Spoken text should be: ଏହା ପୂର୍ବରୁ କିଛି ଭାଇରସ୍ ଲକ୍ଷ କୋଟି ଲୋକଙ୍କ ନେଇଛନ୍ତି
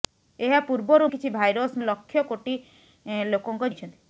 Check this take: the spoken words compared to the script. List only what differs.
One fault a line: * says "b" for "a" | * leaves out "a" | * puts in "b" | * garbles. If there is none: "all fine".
all fine